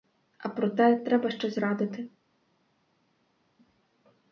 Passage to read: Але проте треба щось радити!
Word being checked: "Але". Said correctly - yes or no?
no